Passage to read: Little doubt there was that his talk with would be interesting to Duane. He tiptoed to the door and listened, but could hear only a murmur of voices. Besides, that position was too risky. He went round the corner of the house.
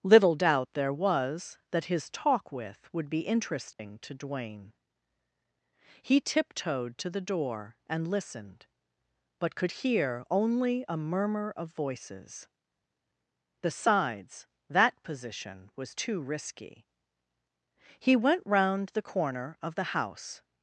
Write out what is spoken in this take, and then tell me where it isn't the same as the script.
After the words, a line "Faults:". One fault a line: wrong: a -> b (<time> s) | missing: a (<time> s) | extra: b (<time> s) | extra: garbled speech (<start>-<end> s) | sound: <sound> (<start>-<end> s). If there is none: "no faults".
Little doubt there was that his talk with would be interesting to Duane. He tiptoed to the door and listened, but could hear only a murmur of voices. Besides, that position was too risky. He went round the corner of the house.
Faults:
sound: dropout (3.7-3.8 s)